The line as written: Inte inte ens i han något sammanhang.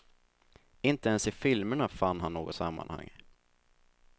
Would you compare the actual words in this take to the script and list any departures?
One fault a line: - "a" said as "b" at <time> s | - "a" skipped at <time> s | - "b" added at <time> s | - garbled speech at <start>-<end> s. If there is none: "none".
- "inte" skipped at 1.1 s
- "filmerna fann" added at 1.3 s